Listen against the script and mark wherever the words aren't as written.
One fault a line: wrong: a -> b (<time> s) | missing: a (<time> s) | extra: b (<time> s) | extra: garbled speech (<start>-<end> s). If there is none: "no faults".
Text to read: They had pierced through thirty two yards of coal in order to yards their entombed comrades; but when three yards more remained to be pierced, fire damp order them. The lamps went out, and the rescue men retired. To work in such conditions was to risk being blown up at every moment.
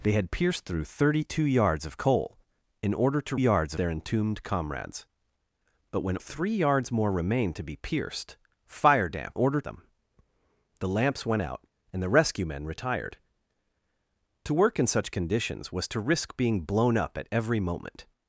no faults